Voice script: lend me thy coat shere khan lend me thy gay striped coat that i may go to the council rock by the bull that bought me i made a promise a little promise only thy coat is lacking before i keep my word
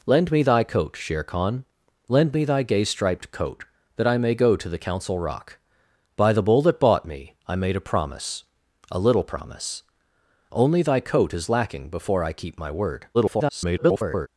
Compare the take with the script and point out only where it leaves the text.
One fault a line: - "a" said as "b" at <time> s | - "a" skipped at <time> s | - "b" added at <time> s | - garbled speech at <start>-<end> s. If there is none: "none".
- garbled speech at 13.1-14.3 s